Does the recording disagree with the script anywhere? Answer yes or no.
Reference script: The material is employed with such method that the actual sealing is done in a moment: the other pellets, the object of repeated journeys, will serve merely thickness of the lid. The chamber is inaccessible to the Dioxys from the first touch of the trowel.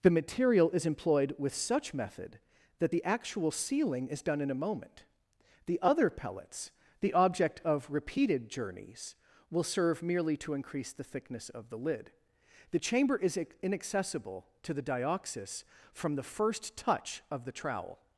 yes